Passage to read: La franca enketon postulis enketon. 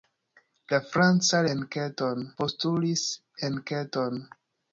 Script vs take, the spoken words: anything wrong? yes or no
no